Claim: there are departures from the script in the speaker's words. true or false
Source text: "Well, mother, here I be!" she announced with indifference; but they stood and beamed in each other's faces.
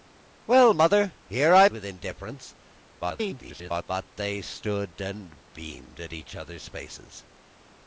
true